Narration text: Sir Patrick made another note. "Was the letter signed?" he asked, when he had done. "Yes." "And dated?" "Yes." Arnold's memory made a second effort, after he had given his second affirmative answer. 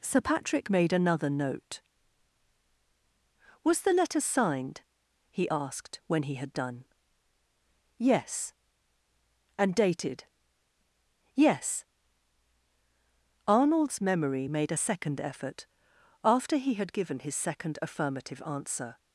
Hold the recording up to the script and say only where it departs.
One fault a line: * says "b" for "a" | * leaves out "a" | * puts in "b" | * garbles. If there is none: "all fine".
all fine